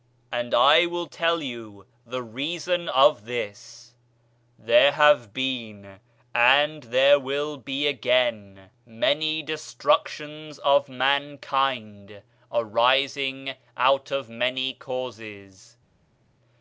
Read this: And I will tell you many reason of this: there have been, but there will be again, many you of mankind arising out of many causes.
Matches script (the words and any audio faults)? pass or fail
fail